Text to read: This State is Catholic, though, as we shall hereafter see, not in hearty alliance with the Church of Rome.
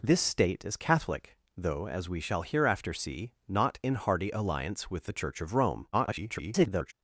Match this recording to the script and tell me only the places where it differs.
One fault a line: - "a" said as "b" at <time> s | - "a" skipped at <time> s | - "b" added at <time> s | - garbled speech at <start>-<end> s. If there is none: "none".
- garbled speech at 5.9-6.9 s